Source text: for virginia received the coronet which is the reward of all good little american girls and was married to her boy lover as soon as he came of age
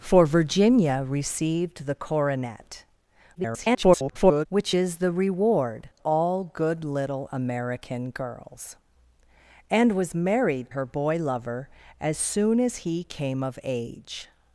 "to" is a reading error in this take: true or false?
true